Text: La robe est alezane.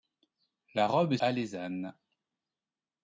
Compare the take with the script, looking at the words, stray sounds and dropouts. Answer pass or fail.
pass